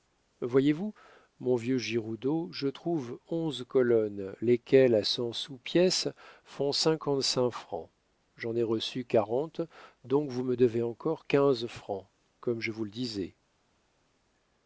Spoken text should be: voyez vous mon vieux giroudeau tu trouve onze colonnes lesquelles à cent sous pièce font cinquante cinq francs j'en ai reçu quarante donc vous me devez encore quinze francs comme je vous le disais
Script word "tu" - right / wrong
wrong